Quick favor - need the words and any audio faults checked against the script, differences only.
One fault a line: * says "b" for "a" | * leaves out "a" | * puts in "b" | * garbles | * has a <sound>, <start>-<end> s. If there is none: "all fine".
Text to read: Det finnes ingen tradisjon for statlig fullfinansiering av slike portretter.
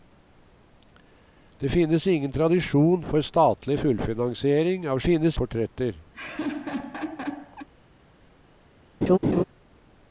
* says "finnes" for "slike"
* has a laugh, 6.1-7.7 s
* has a laugh, 9.0-9.4 s